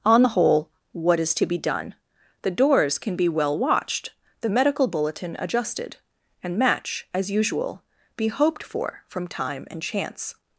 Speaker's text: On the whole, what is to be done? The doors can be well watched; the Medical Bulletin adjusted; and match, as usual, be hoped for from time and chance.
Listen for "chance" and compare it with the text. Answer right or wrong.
right